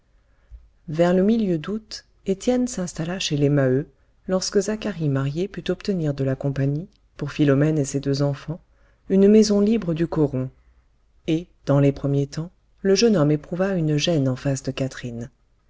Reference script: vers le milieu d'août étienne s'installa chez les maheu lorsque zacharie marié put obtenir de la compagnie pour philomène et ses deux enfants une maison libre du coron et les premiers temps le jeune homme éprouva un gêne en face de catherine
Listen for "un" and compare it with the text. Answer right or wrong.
wrong